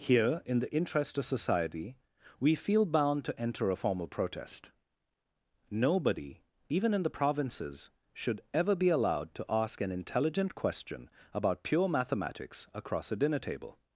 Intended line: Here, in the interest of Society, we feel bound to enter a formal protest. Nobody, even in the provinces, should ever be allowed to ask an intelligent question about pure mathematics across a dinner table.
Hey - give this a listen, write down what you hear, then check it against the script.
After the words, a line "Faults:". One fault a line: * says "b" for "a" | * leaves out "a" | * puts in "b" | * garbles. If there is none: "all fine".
Here, in the interest of Society, we feel bound to enter a formal protest. Nobody, even in the provinces, should ever be allowed to ask an intelligent question about pure mathematics across a dinner table.
Faults:
all fine